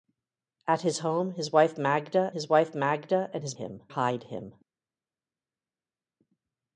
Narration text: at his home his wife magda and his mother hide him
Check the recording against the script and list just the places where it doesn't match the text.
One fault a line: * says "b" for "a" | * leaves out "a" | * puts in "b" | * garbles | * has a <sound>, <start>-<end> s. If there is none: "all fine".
* puts in "his wife magda"
* says "him" for "mother"